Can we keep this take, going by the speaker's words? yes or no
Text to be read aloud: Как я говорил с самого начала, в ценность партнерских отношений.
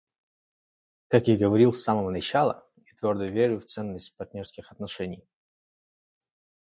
no